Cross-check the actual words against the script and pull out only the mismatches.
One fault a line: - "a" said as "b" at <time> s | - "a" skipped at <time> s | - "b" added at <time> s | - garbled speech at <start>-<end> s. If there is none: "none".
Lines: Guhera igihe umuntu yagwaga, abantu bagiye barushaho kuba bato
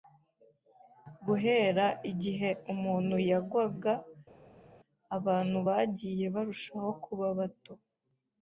none